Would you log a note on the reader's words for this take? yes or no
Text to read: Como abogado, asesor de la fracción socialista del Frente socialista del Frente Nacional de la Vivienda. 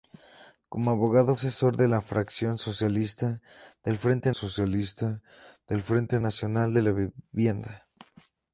no